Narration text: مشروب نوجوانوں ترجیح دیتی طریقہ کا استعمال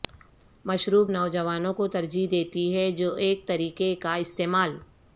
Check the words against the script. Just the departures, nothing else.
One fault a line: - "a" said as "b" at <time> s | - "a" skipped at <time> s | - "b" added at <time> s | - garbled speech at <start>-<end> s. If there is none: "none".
- "کو" added at 1.7 s
- "ہے جو ایک" added at 2.7 s